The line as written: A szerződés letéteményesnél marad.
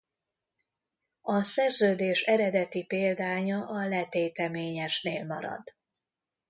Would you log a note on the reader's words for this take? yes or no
yes